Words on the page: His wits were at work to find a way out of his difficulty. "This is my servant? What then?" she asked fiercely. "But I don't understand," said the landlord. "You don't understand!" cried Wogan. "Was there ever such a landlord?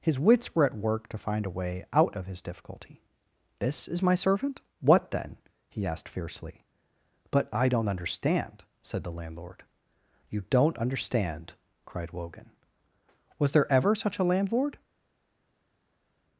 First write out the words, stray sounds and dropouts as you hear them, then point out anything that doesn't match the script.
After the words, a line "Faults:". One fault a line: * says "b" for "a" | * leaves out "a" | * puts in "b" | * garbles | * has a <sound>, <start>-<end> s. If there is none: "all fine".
His wits were at work to find a way out of his difficulty. "This is my servant? What then?" he asked fiercely. "But I don't understand," said the landlord. "You don't understand!" cried Wogan. "Was there ever such a landlord?
Faults:
* says "he" for "she"